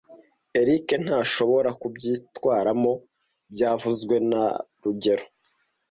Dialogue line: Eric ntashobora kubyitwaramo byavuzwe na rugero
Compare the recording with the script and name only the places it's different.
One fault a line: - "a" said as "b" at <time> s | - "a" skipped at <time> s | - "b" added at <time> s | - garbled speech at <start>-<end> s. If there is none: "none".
none